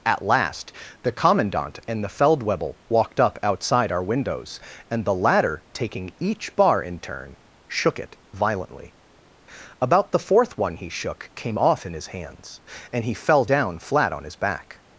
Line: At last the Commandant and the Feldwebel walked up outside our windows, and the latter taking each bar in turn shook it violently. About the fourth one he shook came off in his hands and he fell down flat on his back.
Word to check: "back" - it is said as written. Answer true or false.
true